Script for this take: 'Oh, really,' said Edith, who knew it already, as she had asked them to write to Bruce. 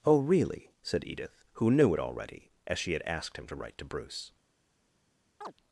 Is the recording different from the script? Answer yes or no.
yes